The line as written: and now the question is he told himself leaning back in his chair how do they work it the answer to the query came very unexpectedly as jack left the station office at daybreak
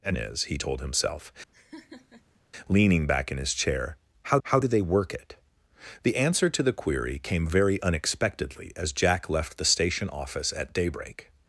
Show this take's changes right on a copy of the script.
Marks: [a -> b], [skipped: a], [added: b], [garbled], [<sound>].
and [skipped: now the question] is he told himself [laugh] leaning back in his chair how [added: how] do they work it the answer to the query came very unexpectedly as jack left the station office at daybreak